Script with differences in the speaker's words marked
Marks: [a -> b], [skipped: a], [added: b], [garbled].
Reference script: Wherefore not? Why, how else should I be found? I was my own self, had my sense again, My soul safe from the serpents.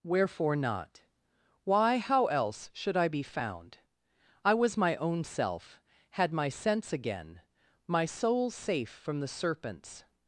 Wherefore not? Why, how else should I be found? I was my own self, had my sense again, My soul safe from the serpents.